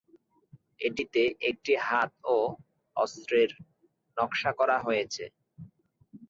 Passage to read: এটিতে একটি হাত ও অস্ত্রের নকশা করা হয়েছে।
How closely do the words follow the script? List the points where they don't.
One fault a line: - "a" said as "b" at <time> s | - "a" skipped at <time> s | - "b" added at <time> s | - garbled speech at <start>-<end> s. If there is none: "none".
none